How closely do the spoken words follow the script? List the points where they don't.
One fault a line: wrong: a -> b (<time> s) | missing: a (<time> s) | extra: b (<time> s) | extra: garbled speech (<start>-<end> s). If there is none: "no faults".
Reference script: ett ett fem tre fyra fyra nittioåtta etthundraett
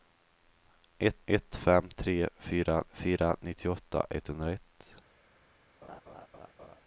no faults